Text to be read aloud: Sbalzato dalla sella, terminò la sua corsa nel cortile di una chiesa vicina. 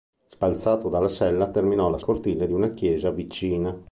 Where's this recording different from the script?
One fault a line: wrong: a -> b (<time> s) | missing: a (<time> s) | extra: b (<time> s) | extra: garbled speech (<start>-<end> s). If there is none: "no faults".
missing: sua corsa nel (2.0 s)